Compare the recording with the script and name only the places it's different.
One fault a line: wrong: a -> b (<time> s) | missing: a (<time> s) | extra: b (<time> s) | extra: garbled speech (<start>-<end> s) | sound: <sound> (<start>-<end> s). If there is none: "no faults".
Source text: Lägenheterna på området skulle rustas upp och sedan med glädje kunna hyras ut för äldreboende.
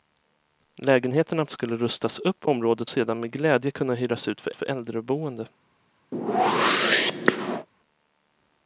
missing: på området (1.4 s)
wrong: och -> området (2.5 s)
extra: för (4.5 s)
sound: whoosh (6.1-7.7 s)